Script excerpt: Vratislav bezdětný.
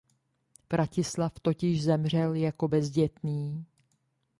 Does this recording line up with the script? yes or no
no